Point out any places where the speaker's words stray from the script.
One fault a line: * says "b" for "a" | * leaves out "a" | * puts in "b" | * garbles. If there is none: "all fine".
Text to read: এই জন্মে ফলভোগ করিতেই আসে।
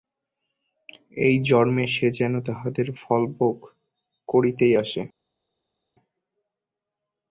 * puts in "সে যেন তাহাদের"